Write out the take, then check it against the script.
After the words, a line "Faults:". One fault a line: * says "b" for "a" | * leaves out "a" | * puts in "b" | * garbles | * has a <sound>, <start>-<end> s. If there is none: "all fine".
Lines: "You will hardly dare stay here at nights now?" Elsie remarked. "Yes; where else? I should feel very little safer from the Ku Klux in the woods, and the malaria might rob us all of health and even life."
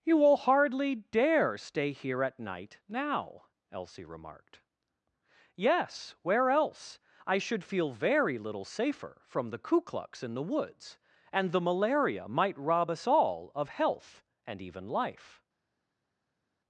"You will hardly dare stay here at night now?" Elsie remarked. "Yes; where else? I should feel very little safer from the Ku Klux in the woods, and the malaria might rob us all of health and even life."
Faults:
* says "night" for "nights"